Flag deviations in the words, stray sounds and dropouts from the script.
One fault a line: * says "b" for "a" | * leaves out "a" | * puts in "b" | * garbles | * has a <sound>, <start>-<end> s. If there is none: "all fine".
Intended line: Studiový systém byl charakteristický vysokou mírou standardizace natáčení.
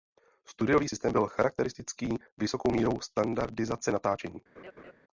* has a laugh, 4.6-4.9 s